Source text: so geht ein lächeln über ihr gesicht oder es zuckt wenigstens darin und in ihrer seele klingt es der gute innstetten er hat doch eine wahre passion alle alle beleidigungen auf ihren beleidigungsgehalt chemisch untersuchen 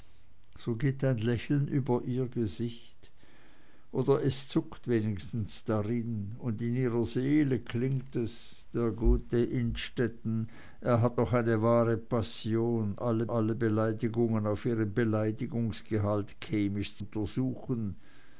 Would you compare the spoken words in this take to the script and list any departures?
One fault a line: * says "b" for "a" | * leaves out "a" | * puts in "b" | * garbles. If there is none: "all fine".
all fine